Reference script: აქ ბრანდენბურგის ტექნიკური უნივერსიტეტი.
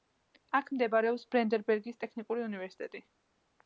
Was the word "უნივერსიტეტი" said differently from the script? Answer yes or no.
no